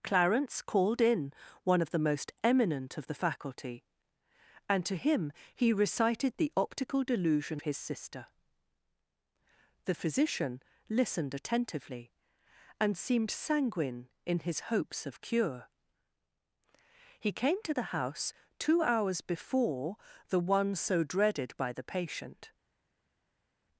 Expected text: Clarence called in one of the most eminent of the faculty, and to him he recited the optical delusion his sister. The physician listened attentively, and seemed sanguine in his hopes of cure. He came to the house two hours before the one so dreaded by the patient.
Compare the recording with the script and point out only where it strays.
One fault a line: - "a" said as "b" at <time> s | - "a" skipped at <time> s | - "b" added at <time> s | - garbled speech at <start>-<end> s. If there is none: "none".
none